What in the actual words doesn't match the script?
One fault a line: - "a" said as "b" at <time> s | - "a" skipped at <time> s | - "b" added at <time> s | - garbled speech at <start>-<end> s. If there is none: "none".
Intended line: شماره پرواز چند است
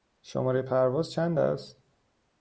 none